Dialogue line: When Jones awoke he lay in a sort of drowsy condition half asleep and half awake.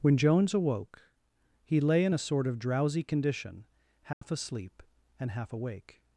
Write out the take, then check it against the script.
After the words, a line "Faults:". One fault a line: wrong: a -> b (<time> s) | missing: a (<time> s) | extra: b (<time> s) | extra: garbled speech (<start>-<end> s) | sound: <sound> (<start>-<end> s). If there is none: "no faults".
When Jones awoke he lay in a sort of drowsy condition half asleep and half awake.
Faults:
sound: dropout (4.1-4.2 s)